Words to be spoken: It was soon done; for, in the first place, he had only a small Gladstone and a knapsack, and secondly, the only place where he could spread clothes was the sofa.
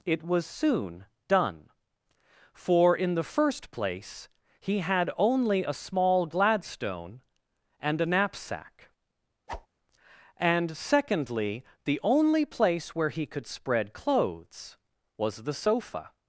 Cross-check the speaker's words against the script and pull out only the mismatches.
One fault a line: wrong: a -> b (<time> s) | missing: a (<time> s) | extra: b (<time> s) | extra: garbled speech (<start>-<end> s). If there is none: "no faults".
no faults